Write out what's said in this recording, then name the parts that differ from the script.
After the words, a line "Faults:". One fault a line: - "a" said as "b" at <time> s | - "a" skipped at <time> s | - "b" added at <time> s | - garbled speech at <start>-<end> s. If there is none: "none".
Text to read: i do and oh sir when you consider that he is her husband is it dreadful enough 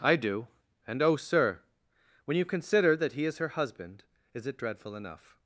i do and oh sir when you consider that he is her husband is it dreadful enough
Faults:
none